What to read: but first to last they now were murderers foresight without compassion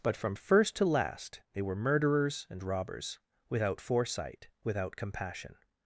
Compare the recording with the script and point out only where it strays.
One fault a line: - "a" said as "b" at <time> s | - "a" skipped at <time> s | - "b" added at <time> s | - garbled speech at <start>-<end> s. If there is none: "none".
- "from" added at 0.2 s
- "now" skipped at 1.6 s
- "and robbers without" added at 2.5 s